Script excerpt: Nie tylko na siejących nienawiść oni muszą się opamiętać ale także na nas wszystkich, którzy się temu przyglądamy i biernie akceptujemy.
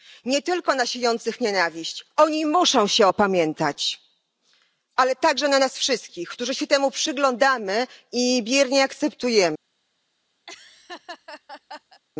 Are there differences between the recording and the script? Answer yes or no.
no